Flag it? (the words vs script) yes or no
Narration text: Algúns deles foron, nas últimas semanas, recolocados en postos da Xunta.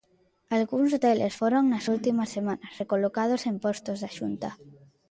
no